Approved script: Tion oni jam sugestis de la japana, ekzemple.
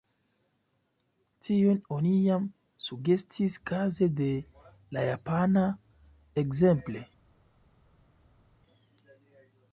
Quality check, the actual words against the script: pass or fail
fail